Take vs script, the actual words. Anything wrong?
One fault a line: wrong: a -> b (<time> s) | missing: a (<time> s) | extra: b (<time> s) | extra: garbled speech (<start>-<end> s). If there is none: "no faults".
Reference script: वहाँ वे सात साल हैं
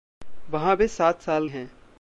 no faults